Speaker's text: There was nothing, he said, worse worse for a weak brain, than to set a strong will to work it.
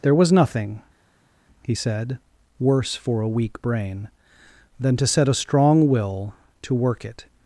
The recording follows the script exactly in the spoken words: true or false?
false